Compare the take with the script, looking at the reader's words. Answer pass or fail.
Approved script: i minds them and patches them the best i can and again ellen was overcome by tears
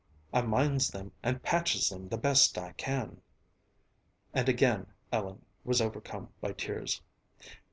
pass